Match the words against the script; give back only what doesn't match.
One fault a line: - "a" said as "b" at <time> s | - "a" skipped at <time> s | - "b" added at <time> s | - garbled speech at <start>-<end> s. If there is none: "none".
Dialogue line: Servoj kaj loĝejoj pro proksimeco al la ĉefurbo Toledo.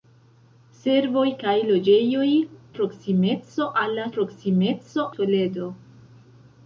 - "pro" skipped at 2.3 s
- "ĉefurbo" said as "proksimeco" at 4.2 s